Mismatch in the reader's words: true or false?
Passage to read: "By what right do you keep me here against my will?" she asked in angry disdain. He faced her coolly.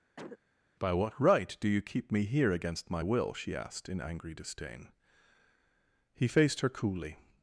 false